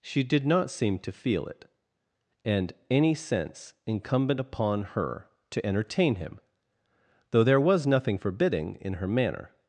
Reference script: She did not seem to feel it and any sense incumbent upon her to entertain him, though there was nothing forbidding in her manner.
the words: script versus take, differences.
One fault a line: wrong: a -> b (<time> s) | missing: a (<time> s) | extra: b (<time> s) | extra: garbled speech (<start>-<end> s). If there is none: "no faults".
no faults